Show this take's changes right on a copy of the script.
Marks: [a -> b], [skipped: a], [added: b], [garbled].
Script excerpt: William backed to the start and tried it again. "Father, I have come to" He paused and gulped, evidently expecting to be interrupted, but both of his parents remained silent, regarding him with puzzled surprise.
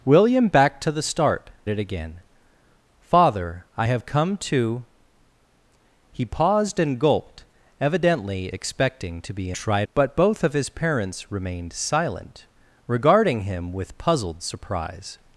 William backed to the start [skipped: and tried] it again. "Father, I have come to" He paused and gulped, evidently expecting to be [interrupted, -> tried] but both of his parents remained silent, regarding him with puzzled surprise.